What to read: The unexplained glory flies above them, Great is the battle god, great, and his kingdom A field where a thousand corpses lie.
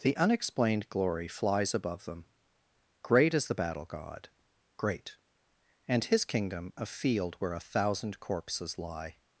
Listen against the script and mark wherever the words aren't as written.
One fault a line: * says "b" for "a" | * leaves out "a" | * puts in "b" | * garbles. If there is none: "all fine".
all fine